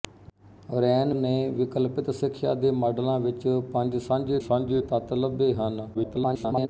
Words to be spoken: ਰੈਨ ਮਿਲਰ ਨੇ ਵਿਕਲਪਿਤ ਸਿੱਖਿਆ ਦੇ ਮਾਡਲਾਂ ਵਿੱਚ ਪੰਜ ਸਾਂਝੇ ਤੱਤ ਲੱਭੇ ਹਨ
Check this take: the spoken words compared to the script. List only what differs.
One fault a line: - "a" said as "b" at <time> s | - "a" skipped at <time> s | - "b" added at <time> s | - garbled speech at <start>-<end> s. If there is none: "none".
- "ਮਿਲਰ" skipped at 1.1 s
- "ਸਾਂਝੇ" added at 4.4 s
- garbled speech at 5.9-6.7 s